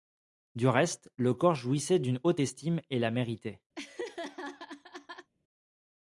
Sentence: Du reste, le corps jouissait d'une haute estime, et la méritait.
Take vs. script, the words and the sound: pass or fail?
fail